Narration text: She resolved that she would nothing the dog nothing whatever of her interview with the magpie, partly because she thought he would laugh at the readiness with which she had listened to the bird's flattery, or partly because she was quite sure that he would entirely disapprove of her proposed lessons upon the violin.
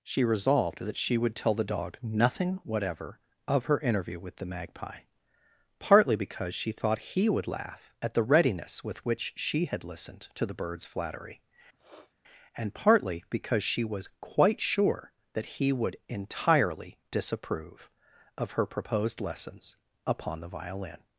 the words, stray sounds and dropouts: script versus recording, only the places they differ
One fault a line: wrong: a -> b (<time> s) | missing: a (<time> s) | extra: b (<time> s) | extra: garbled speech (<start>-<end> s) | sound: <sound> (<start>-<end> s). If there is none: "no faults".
wrong: nothing -> tell (1.4 s)
sound: sniff (11.7-12.1 s)
wrong: or -> and (12.5 s)